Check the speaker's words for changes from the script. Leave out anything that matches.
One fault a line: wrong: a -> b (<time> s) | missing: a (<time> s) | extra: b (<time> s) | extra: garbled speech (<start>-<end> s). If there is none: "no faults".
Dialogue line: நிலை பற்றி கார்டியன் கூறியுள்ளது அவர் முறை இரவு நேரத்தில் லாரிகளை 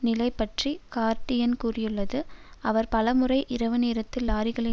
extra: பல (2.9 s)